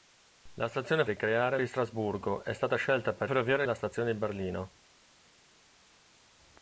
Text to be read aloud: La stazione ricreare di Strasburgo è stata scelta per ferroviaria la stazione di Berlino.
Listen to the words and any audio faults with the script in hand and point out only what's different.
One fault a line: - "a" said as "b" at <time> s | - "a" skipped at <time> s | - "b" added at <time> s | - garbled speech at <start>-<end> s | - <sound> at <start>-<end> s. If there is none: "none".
none